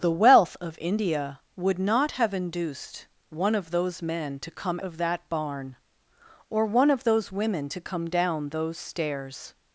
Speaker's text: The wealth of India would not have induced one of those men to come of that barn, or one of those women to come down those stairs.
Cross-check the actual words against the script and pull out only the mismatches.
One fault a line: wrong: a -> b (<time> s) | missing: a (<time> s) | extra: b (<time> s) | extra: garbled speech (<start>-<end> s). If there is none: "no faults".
no faults